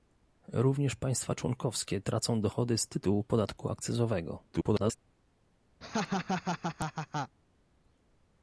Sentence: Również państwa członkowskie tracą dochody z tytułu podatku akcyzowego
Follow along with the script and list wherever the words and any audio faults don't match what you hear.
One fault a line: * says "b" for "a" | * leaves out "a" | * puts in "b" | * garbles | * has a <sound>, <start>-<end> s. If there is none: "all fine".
* garbles
* has a laugh, 5.8-7.4 s